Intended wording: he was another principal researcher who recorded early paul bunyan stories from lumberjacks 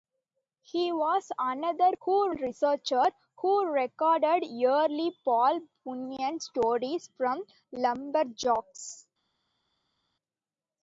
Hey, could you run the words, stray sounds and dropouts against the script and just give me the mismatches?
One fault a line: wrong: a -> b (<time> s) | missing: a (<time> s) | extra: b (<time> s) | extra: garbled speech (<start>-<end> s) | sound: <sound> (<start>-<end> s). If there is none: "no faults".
wrong: principal -> who (2.0 s)